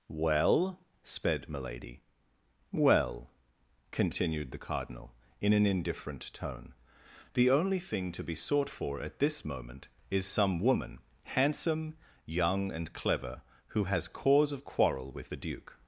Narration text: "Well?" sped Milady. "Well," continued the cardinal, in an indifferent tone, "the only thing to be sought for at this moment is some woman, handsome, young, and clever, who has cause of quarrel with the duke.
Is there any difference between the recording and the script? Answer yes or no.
no